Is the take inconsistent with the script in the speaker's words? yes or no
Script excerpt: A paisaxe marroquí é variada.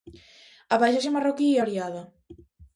no